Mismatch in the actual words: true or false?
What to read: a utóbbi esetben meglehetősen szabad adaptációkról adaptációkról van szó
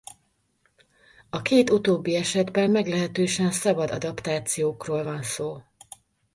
true